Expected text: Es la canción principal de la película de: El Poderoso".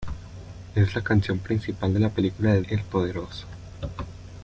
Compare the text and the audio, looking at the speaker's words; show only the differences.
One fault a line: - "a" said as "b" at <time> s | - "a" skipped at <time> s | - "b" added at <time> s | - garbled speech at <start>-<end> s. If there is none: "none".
none